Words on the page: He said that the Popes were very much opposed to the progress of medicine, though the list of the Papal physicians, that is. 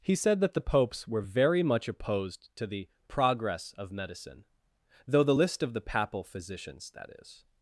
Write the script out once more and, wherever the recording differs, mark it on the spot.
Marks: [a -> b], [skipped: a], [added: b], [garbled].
He said that the Popes were very much opposed to the progress of medicine, though the list of the Papal physicians, that is.